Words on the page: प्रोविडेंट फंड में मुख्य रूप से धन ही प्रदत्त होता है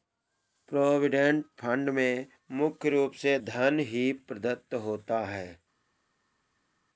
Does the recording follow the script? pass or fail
pass